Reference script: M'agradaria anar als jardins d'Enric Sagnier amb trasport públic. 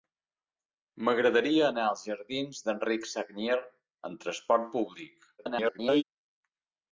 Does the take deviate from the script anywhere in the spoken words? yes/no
yes